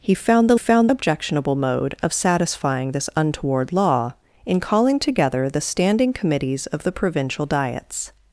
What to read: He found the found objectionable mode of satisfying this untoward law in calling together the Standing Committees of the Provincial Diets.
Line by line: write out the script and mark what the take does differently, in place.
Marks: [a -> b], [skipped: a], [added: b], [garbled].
He found the found objectionable mode of satisfying this untoward law in calling together the Standing Committees of the Provincial Diets.